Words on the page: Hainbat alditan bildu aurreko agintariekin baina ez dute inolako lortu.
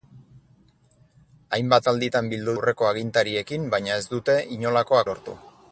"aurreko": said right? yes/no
yes